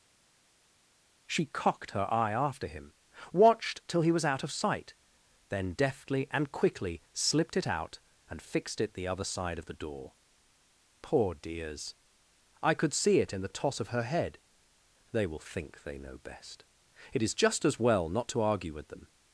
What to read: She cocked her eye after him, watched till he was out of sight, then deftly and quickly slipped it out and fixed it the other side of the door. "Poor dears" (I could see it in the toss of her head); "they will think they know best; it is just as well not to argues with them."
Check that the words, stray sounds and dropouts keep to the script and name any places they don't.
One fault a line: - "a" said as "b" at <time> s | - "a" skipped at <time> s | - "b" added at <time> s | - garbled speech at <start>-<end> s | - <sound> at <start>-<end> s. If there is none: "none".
- "argues" said as "argue" at 18.4 s